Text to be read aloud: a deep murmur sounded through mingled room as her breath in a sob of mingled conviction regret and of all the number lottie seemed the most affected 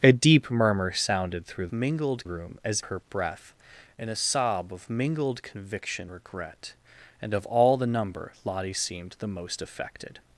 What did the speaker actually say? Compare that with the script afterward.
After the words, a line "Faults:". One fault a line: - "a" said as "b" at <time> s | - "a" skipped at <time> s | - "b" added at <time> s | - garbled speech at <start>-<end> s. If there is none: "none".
a deep murmur sounded through mingled room as her breath in a sob of mingled conviction regret and of all the number lottie seemed the most affected
Faults:
none